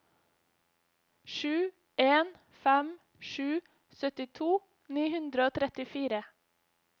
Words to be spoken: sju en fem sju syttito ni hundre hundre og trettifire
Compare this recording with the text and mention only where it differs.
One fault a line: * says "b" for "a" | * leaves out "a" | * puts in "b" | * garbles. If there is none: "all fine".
* leaves out "hundre"